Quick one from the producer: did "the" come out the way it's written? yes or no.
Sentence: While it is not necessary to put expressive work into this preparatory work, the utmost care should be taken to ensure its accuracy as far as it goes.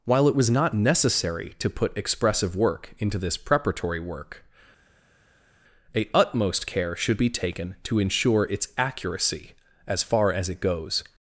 no